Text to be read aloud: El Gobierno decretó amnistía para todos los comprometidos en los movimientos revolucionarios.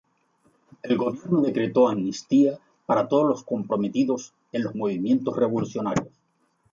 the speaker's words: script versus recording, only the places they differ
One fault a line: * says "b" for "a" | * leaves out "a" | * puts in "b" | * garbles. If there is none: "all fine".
all fine